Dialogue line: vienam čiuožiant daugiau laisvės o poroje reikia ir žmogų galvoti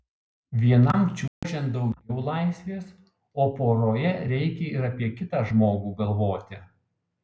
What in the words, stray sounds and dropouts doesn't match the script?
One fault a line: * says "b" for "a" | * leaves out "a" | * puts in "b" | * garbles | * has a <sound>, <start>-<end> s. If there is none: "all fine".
* has a dropout, 1.3-1.4 s
* puts in "apie kitą"